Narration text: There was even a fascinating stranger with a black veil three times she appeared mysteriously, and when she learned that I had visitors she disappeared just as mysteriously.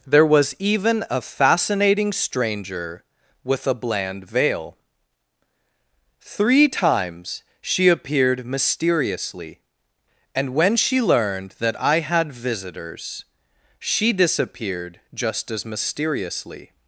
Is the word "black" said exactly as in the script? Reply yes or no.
no